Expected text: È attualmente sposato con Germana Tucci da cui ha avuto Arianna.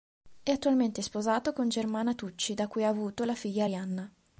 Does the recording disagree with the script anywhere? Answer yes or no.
yes